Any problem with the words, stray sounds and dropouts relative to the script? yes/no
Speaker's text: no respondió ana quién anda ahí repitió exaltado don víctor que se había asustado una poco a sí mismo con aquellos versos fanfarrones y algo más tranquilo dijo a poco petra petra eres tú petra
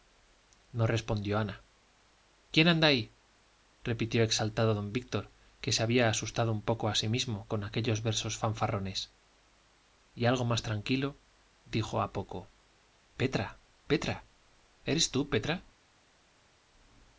yes